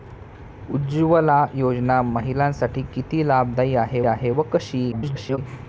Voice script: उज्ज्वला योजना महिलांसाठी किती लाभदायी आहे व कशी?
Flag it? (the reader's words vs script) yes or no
yes